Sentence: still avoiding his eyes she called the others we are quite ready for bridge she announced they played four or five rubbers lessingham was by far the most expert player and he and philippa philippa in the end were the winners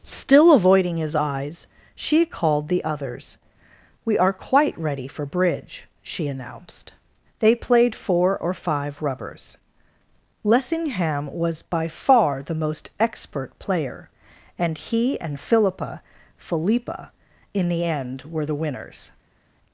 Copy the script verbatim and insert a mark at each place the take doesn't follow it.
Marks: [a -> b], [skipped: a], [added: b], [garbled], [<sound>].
still avoiding his eyes she called the others we are quite ready for bridge she announced they played four or five rubbers lessingham was by far the most expert player and he and philippa philippa in the end were the winners